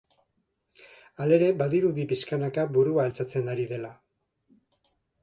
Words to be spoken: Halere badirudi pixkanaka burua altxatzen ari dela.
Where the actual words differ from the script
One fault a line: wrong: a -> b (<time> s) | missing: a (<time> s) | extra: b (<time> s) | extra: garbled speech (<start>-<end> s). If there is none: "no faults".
no faults